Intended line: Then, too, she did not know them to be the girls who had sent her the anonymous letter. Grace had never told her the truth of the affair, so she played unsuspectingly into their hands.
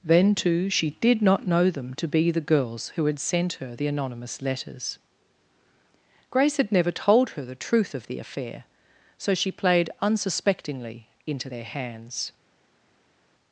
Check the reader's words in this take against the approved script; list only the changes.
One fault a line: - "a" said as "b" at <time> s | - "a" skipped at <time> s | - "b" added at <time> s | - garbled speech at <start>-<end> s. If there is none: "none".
- "letter" said as "letters" at 4.4 s